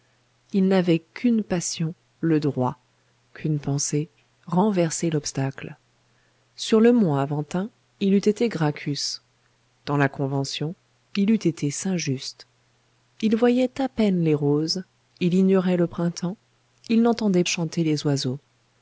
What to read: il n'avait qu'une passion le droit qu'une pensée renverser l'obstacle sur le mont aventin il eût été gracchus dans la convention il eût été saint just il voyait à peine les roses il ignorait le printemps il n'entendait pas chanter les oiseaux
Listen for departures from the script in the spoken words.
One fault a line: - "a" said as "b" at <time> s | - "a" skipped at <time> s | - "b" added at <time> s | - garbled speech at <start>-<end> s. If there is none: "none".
- "pas" skipped at 17.4 s